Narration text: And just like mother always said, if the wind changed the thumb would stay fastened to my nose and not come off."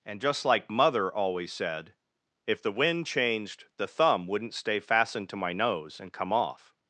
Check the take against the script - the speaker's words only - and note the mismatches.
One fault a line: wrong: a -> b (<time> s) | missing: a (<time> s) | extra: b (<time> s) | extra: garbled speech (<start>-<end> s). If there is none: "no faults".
wrong: would -> wouldn't (4.3 s)
missing: not (6.1 s)